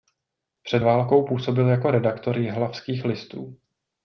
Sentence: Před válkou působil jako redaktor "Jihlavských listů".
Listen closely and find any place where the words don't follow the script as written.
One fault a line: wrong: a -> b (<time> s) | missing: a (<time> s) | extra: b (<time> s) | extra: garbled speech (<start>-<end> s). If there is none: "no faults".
no faults